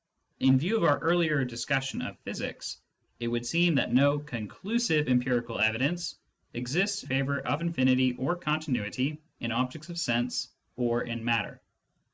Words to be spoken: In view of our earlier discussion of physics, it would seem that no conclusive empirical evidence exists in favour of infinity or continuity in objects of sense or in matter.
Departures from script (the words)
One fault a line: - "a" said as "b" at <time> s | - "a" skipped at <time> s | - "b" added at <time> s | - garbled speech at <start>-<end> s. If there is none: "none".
- "in" skipped at 7.0 s